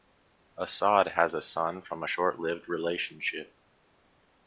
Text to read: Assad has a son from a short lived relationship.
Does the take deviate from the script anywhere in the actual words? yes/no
no